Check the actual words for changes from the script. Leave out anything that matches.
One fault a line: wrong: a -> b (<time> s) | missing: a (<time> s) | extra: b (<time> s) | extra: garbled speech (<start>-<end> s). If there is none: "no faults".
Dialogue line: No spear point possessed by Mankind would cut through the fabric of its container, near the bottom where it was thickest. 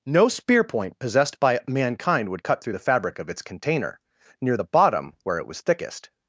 no faults